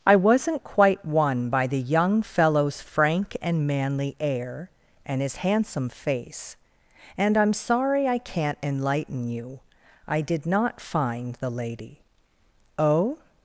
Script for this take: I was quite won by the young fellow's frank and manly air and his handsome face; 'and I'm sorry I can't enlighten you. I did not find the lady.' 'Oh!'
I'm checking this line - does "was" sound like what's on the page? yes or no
no